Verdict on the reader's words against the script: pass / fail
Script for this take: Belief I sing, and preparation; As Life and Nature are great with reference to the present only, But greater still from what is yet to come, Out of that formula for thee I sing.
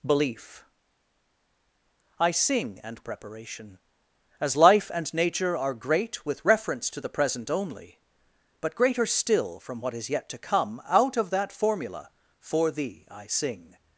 pass